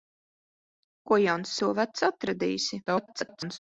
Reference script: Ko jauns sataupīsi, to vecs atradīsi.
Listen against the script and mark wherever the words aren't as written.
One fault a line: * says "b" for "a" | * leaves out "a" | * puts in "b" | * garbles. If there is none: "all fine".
* leaves out "sataupīsi"
* garbles